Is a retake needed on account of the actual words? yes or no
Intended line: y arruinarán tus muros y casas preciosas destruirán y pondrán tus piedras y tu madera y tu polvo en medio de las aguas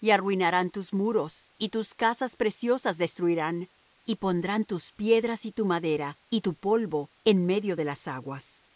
yes